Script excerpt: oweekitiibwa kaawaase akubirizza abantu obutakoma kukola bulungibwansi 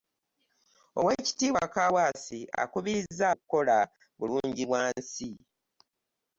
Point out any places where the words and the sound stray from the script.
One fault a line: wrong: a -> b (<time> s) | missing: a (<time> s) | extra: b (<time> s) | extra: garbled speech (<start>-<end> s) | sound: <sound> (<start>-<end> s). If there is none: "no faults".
missing: abantu obutakoma (3.2 s)